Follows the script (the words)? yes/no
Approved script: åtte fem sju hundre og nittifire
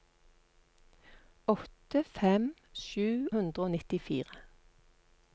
yes